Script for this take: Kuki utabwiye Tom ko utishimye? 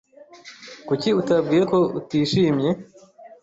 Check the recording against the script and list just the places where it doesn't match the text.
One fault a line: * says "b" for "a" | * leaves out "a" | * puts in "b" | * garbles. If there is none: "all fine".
* leaves out "Tom"